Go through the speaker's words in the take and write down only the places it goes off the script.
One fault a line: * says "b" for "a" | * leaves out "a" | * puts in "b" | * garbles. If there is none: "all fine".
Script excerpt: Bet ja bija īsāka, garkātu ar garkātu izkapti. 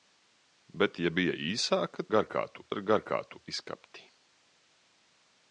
all fine